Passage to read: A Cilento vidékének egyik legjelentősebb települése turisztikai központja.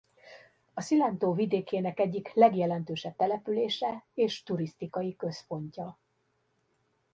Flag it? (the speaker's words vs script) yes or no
yes